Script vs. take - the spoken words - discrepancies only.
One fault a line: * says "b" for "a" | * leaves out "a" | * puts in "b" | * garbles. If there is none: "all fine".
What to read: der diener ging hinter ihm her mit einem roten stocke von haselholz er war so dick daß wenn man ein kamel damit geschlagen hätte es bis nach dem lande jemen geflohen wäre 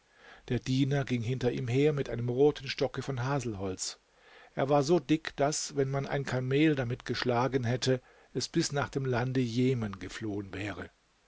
all fine